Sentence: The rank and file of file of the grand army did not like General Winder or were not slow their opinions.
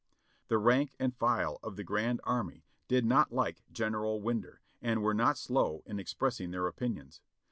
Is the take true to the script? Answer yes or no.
no